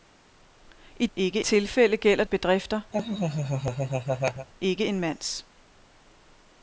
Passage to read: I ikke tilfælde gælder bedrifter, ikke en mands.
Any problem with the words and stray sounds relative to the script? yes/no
yes